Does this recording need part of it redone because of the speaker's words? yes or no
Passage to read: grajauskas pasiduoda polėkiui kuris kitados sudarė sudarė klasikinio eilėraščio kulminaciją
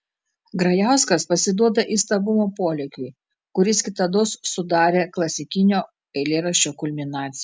yes